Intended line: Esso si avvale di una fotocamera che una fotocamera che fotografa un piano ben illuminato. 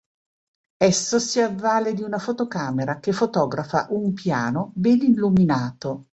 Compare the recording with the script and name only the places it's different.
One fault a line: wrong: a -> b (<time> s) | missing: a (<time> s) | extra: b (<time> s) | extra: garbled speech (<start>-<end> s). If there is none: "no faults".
missing: una fotocamera che (3.1 s)